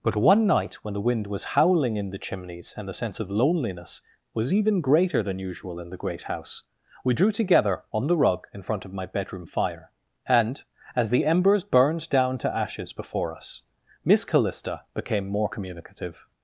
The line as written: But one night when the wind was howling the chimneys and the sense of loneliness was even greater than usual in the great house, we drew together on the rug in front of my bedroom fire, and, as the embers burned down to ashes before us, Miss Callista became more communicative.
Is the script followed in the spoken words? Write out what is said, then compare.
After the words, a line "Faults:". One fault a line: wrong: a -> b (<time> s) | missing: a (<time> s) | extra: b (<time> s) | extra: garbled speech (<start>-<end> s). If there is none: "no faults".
But one night when the wind was howling in the chimneys and the sense of loneliness was even greater than usual in the great house, we drew together on the rug in front of my bedroom fire, and, as the embers burned down to ashes before us, Miss Callista became more communicative.
Faults:
extra: in (1.9 s)